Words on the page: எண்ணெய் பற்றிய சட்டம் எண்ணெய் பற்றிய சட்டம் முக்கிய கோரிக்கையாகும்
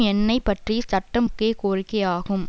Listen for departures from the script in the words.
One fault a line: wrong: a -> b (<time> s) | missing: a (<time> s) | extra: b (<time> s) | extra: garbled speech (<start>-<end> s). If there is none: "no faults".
missing: எண்ணெய் பற்றிய சட்டம் (1.2 s)